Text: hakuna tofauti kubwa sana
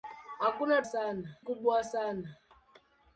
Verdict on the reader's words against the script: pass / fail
fail